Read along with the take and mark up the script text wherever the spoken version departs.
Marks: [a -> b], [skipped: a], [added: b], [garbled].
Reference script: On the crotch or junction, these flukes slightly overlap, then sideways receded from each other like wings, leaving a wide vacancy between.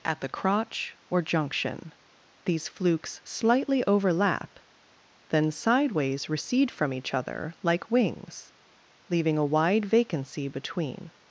[On -> At] the crotch or junction, these flukes slightly overlap, then sideways [receded -> recede] from each other like wings, leaving a wide vacancy between.